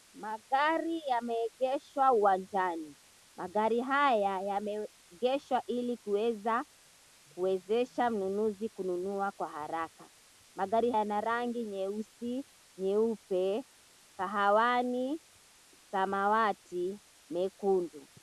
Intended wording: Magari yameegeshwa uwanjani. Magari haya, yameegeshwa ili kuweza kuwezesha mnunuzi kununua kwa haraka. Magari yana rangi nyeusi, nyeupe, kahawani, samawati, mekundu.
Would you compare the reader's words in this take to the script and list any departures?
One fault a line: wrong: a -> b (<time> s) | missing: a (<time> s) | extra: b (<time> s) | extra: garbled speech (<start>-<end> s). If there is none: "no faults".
no faults